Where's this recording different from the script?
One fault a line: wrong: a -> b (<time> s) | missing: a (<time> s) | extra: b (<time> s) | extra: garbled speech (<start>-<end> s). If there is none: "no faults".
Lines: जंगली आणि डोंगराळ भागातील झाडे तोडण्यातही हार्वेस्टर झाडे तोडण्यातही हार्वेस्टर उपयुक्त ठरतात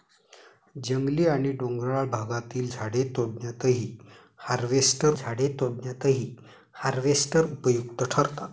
no faults